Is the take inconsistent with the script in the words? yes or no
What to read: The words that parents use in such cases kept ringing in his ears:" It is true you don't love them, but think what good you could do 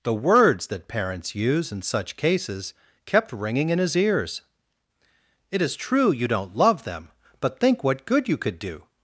no